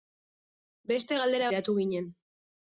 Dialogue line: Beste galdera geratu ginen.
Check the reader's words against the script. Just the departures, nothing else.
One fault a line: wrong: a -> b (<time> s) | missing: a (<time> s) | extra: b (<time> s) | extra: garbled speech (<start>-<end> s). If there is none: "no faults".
no faults